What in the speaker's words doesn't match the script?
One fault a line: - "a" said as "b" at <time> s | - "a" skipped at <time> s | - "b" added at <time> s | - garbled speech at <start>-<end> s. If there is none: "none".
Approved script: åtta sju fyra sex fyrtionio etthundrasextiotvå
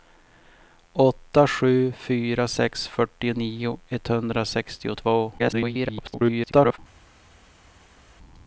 - garbled speech at 5.4-6.8 s